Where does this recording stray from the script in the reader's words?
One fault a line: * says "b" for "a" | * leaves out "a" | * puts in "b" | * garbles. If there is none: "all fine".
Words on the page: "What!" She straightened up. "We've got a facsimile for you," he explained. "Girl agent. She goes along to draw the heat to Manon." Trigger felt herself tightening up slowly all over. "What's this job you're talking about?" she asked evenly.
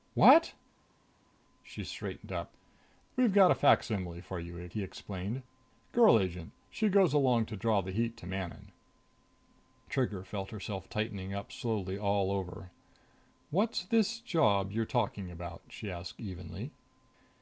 all fine